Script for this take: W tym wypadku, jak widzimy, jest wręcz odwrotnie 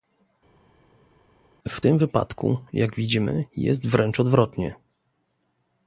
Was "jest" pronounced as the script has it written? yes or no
yes